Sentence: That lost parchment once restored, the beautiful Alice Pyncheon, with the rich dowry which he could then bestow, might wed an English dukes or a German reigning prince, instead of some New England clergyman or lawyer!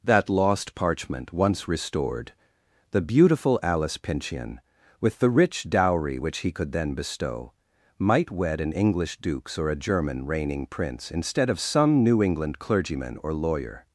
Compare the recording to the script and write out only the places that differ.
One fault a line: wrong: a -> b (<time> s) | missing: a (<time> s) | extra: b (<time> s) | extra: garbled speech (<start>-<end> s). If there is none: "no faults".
no faults